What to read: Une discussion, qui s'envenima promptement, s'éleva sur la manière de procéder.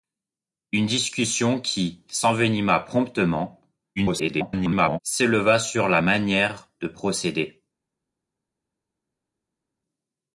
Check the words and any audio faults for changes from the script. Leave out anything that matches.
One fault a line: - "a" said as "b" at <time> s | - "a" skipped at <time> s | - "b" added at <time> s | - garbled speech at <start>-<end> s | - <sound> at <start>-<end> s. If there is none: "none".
- garbled speech at 4.0-5.0 s